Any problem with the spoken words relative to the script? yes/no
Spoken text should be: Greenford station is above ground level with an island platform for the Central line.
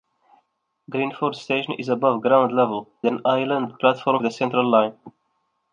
yes